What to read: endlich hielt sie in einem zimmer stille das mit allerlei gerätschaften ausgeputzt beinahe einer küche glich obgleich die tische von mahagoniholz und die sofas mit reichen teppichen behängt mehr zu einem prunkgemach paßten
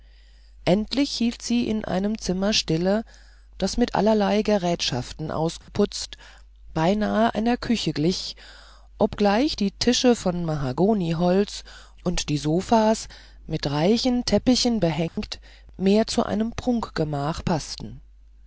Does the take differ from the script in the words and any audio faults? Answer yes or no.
yes